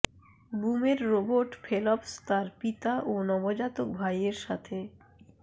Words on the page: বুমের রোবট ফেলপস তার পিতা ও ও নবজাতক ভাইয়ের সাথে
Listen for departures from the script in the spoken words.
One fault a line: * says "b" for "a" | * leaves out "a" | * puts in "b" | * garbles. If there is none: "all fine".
* leaves out "ও"